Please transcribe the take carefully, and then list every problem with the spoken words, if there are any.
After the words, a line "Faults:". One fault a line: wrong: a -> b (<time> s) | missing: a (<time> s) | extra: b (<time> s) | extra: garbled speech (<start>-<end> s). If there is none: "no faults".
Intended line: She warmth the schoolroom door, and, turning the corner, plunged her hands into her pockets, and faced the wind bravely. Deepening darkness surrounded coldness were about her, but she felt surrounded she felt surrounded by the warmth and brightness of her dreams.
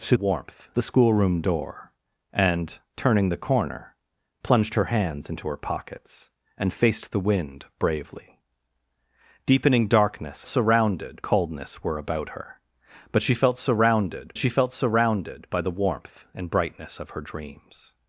She warmth the schoolroom door, and, turning the corner, plunged her hands into her pockets, and faced the wind bravely. Deepening darkness surrounded coldness were about her, but she felt surrounded she felt surrounded by the warmth and brightness of her dreams.
Faults:
no faults